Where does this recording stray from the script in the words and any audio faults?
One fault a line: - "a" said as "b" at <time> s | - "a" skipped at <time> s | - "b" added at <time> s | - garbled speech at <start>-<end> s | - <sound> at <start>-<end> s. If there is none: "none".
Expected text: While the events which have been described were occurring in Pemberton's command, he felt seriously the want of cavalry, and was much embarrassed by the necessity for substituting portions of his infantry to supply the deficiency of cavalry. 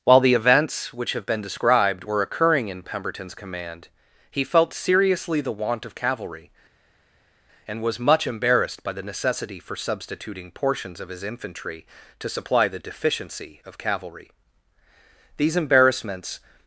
- "These embarrassments" added at 15.4 s